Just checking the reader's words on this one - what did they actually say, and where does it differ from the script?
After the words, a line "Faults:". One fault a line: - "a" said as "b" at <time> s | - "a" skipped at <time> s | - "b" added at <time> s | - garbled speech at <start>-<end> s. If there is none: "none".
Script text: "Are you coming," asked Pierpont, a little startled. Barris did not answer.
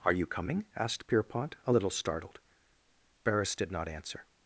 "Are you coming," asked Pierpont, a little startled. Barris did not answer.
Faults:
none